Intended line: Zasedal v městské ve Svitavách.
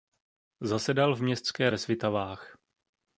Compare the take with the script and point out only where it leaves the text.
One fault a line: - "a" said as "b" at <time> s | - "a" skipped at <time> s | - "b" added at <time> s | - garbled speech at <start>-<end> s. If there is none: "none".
none